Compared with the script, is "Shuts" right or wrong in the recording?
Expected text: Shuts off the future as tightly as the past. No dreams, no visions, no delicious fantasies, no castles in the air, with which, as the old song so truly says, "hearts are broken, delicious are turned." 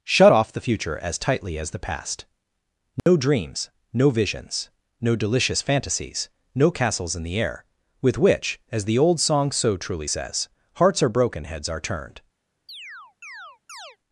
wrong